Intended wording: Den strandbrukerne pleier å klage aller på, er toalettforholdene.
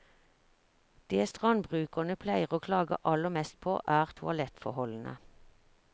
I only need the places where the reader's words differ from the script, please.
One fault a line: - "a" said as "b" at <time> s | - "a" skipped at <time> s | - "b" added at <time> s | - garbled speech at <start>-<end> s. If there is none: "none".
- "Den" said as "Det" at 1.1 s
- "mest" added at 3.4 s